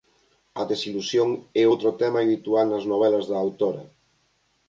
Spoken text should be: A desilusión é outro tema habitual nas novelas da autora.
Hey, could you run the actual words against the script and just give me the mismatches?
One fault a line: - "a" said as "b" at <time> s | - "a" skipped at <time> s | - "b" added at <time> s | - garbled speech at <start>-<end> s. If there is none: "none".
none